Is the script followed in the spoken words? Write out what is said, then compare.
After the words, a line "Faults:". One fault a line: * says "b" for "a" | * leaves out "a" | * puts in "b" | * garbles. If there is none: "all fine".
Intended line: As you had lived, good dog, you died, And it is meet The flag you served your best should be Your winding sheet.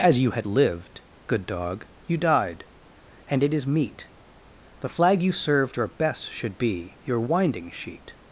As you had lived, good dog, you died, And it is meet The flag you served your best should be Your winding sheet.
Faults:
all fine